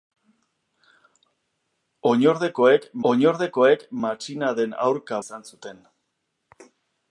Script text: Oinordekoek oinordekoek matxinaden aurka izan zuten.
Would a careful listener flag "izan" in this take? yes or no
no